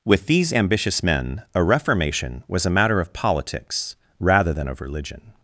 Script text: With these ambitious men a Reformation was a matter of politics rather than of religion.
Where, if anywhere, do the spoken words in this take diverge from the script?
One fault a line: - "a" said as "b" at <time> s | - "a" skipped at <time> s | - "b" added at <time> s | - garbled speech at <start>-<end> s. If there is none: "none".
none